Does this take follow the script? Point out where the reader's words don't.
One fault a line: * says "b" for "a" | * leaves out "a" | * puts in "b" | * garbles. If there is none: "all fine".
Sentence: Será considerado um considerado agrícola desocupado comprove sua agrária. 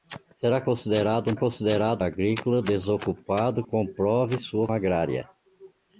all fine